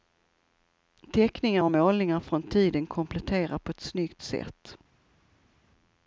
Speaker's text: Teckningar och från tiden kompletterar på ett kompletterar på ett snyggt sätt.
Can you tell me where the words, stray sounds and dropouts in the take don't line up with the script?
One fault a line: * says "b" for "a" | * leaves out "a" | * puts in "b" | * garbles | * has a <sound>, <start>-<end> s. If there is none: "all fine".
* puts in "målningar"
* leaves out "kompletterar på ett"